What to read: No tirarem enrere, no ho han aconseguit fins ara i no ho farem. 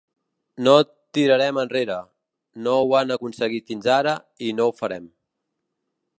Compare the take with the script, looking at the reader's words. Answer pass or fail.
pass